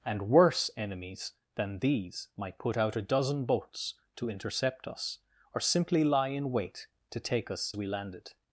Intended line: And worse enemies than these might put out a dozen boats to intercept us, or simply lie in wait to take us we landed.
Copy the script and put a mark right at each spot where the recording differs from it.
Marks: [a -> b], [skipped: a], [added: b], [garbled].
And worse enemies than these might put out a dozen boats to intercept us, or simply lie in wait to take us we landed.